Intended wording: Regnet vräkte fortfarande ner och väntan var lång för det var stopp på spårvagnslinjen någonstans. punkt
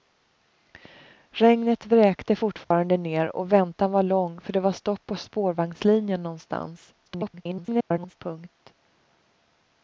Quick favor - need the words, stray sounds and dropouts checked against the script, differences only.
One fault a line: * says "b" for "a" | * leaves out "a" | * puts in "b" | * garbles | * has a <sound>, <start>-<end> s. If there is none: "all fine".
* has a dropout, 2.6-2.7 s
* garbles